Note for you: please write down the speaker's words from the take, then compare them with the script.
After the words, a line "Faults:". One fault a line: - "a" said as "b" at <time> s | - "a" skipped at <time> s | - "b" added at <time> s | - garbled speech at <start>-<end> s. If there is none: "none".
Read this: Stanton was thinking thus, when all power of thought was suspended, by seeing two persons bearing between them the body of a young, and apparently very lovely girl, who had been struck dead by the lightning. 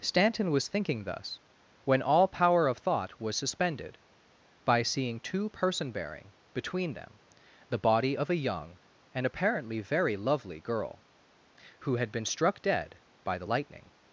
Stanton was thinking thus, when all power of thought was suspended, by seeing two person bearing between them the body of a young, and apparently very lovely girl, who had been struck dead by the lightning.
Faults:
- "persons" said as "person" at 5.5 s